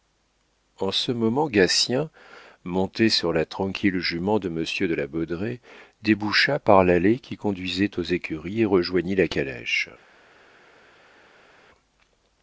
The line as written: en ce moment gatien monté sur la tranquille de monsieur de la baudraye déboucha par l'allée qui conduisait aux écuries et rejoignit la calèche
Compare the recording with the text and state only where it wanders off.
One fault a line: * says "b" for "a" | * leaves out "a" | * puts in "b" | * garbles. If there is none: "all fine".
* puts in "jument"